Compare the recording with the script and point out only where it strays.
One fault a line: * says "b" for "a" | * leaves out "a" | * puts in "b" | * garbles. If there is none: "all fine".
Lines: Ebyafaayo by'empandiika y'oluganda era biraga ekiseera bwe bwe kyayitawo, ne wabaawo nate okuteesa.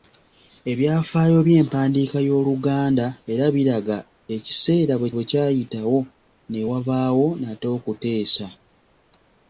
all fine